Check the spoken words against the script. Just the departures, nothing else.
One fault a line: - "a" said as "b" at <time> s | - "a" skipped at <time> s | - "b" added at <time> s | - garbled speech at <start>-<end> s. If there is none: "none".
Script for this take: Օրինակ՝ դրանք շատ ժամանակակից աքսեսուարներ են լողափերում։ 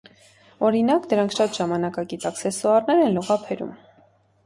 none